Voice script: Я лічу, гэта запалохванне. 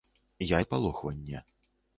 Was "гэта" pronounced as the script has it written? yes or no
no